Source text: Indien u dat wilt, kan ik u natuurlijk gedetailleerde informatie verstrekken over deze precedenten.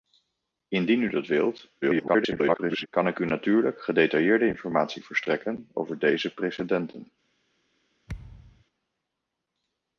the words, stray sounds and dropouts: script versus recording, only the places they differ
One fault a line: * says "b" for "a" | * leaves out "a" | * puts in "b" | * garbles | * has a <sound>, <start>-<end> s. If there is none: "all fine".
* garbles
* has a thud, 8.1-8.6 s